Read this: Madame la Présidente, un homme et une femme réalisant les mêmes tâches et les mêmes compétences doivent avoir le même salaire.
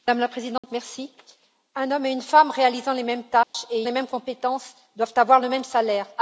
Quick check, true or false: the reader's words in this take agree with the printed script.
true